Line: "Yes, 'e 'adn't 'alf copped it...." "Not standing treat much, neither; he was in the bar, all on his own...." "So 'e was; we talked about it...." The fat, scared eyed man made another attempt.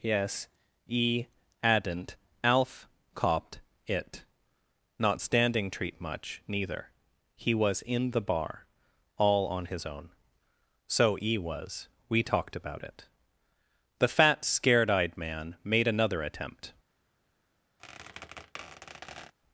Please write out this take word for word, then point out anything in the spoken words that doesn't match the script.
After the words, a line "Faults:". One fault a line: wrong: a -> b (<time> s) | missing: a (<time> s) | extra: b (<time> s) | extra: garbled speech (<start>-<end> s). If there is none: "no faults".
"Yes, 'e 'adn't 'alf copped it...." "Not standing treat much, neither; he was in the bar, all on his own...." "So 'e was; we talked about it...." The fat, scared eyed man made another attempt.
Faults:
no faults